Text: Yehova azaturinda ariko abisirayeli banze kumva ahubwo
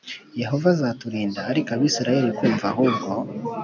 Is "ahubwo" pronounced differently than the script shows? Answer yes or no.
no